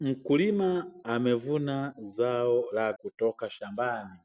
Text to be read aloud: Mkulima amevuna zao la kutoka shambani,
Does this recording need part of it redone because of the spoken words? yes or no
no